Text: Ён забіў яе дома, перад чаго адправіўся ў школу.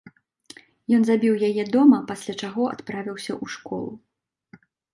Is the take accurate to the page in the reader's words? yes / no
no